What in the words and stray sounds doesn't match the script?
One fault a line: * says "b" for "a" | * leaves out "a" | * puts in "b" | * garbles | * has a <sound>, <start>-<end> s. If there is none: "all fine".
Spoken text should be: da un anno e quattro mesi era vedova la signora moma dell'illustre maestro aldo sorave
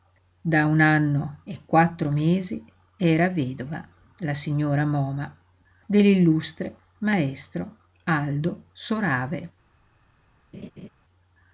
* has a laugh, 10.5-10.9 s